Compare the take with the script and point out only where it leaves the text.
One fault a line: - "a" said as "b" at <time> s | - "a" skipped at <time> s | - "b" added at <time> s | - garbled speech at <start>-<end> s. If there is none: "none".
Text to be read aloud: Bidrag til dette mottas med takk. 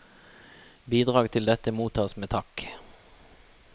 none